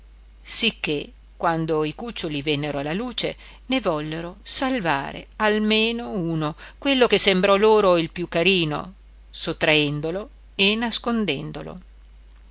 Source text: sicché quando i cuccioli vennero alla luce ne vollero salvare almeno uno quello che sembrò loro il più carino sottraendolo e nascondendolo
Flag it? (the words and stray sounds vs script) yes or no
no